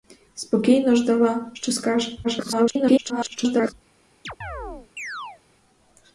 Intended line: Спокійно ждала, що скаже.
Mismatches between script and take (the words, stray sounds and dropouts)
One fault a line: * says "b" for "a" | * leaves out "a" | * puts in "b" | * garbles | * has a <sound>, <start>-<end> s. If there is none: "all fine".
* garbles
* has a chirp, 4.2-5.4 s